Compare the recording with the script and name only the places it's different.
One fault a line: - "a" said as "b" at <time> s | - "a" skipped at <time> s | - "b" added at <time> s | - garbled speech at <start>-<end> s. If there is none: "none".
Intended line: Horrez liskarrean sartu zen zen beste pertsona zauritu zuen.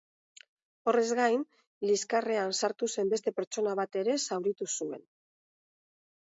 - "gain" added at 1.2 s
- "zen" skipped at 3.1 s
- "bat ere" added at 3.8 s